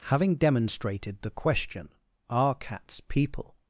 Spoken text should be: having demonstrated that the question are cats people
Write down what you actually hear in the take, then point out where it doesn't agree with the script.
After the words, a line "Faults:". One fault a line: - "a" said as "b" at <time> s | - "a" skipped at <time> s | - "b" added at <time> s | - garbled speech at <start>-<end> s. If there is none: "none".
having demonstrated the question are cats people
Faults:
- "that" skipped at 1.2 s